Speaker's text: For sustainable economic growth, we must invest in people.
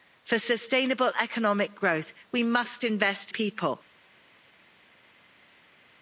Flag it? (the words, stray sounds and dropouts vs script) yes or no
yes